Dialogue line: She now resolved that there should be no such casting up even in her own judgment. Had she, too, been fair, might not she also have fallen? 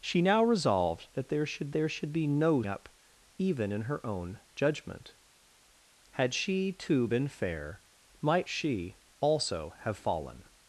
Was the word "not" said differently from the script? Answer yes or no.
yes